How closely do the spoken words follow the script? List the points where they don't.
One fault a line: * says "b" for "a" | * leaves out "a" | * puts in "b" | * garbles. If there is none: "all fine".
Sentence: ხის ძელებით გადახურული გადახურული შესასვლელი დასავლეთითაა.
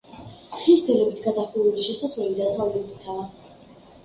* leaves out "გადახურული"